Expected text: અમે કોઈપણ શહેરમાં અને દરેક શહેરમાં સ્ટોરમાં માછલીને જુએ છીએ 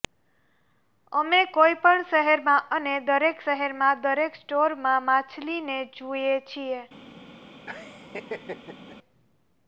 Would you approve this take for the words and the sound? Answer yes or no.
no